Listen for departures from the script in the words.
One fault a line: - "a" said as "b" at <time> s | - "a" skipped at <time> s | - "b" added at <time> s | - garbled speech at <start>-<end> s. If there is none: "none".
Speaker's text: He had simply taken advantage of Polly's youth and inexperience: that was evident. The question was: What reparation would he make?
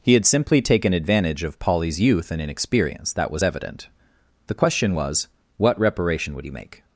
none